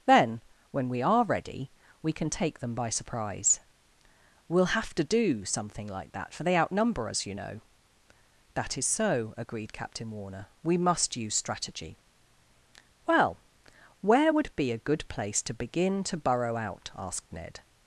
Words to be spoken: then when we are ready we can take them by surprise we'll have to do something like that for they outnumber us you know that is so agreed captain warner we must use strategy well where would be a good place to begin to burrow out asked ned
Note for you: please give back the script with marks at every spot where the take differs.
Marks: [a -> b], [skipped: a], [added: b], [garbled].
then when we are ready we can take them by surprise we'll have to do something like that for they outnumber us you know that is so agreed captain warner we must use strategy well where would be a good place to begin to burrow out asked ned